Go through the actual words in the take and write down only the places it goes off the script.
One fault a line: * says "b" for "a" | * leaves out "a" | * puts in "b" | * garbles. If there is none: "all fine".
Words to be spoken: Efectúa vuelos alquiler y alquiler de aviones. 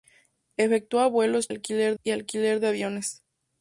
all fine